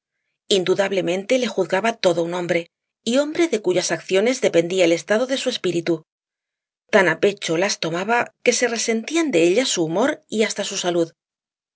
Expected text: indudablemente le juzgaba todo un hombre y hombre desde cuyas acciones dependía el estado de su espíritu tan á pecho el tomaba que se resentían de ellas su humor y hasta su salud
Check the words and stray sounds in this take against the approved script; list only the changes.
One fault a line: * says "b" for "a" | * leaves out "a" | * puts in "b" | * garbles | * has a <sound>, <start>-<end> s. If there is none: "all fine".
* says "de" for "desde"
* says "las" for "el"